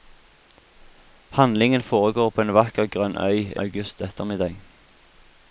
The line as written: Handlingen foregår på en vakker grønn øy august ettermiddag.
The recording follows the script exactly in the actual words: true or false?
true